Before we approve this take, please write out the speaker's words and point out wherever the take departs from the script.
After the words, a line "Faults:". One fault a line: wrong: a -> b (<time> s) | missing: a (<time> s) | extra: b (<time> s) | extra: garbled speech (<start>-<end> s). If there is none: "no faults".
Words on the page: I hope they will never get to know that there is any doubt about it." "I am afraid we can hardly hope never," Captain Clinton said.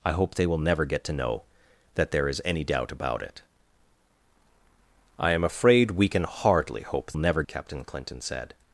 I hope they will never get to know that there is any doubt about it." "I am afraid we can hardly hope never," Captain Clinton said.
Faults:
no faults